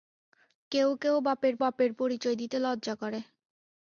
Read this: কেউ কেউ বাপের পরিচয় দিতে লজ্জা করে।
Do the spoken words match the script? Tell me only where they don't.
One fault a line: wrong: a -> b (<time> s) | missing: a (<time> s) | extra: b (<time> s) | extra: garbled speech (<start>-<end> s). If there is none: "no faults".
extra: বাপের (1.6 s)